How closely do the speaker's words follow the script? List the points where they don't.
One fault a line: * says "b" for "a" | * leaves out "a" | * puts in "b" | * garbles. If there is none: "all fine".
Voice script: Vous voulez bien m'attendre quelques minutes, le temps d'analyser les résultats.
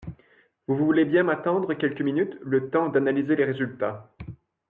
all fine